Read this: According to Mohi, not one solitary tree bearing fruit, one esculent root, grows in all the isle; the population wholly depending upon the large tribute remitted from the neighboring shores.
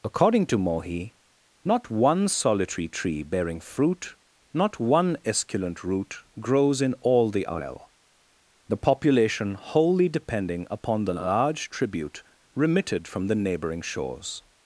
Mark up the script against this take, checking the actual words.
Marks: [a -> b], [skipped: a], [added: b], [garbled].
According to Mohi, not one solitary tree bearing fruit, [added: not] one esculent root, grows in all the isle; the population wholly depending upon the large tribute remitted from the neighboring shores.